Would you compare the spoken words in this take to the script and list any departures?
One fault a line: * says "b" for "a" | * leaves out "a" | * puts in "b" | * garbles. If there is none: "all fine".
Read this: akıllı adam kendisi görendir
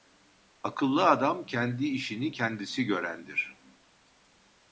* puts in "kendi işini"